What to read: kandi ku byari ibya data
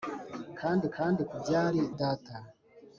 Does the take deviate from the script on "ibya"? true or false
true